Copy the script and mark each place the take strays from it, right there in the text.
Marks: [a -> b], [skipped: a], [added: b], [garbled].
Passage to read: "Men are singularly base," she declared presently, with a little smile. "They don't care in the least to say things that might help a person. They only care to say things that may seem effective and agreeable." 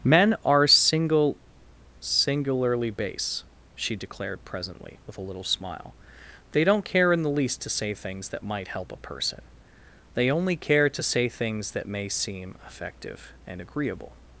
"Men are [added: single] singularly base," she declared presently, with a little smile. "They don't care in the least to say things that might help a person. They only care to say things that may seem effective and agreeable."